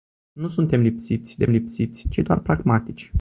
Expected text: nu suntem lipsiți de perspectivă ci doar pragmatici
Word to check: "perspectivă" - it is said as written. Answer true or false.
false